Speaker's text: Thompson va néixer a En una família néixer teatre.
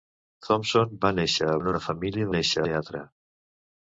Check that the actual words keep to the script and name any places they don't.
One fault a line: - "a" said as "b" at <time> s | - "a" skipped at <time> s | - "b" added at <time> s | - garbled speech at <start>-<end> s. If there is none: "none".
none